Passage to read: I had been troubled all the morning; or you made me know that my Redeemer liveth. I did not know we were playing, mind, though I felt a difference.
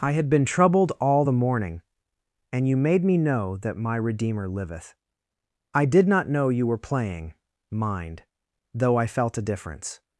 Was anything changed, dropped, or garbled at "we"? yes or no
yes